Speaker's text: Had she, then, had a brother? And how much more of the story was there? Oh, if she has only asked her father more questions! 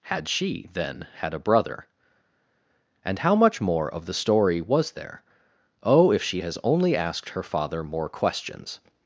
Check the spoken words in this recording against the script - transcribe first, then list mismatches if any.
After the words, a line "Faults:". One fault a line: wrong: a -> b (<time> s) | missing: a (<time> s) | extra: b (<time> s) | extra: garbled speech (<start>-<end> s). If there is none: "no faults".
Had she, then, had a brother? And how much more of the story was there? Oh, if she has only asked her father more questions!
Faults:
no faults